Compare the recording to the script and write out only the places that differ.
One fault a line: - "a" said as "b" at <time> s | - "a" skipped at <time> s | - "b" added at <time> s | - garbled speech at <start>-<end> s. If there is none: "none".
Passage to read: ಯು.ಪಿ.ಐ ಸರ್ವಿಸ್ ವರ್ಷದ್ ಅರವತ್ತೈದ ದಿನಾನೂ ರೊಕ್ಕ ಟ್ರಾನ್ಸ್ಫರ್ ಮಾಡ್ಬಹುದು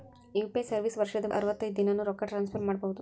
none